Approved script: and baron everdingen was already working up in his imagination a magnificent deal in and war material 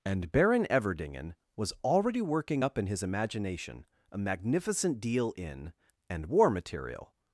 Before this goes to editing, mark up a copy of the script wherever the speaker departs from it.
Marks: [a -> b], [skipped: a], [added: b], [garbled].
and baron everdingen was already working up in his imagination a magnificent deal in and war material